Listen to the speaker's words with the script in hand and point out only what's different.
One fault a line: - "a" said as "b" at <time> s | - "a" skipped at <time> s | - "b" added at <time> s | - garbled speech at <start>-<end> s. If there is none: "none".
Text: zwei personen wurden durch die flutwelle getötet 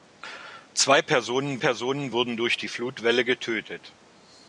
- "personen" added at 1.6 s